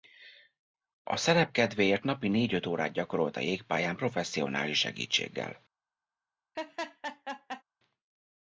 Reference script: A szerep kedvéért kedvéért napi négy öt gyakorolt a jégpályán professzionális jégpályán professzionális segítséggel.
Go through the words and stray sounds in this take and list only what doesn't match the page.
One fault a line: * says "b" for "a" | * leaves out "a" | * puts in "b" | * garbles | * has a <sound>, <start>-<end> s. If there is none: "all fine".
* leaves out "kedvéért"
* puts in "órát"
* leaves out "jégpályán professzionális"
* has a laugh, 6.5-7.6 s